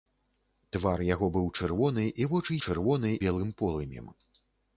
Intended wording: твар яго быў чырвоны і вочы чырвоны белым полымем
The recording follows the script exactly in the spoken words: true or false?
true